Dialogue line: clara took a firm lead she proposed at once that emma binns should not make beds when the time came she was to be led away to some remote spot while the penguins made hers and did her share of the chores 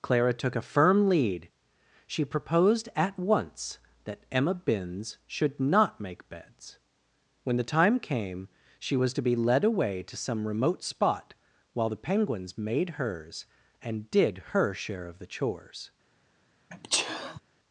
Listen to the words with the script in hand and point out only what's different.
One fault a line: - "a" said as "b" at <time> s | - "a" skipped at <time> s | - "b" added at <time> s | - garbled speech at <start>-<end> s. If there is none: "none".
none